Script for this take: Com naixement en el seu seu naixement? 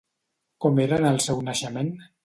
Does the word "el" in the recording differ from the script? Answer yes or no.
no